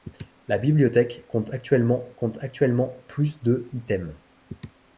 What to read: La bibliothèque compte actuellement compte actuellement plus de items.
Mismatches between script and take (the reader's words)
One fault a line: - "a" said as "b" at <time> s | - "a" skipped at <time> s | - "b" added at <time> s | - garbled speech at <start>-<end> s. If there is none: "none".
none